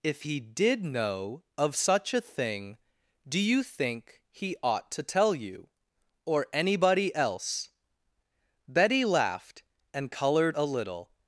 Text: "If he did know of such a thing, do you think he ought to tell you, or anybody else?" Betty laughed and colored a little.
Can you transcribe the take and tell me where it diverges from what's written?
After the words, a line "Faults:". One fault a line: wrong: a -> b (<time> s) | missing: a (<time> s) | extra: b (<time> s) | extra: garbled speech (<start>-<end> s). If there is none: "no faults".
"If he did know of such a thing, do you think he ought to tell you, or anybody else?" Betty laughed and colored a little.
Faults:
no faults